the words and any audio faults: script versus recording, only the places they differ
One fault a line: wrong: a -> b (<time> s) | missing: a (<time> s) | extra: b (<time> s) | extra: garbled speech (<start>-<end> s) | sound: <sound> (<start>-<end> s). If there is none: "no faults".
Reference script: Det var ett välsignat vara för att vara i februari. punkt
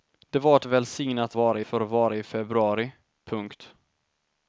no faults